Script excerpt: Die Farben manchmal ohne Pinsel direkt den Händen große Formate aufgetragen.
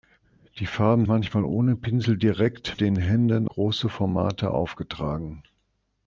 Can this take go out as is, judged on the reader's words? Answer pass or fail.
pass